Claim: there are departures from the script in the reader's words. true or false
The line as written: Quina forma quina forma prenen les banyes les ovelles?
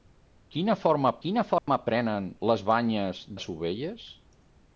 false